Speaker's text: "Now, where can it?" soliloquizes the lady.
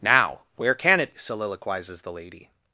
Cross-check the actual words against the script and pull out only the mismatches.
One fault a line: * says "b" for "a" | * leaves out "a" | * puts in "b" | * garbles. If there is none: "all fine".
all fine